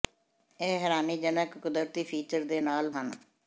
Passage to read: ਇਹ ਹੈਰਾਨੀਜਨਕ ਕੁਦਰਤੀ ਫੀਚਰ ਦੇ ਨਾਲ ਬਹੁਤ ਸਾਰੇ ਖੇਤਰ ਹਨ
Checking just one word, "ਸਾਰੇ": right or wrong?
wrong